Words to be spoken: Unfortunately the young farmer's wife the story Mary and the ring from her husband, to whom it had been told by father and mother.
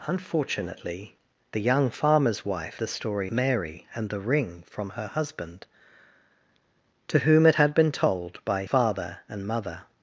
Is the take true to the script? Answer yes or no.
yes